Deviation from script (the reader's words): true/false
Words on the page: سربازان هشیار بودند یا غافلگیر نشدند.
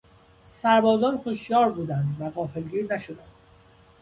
true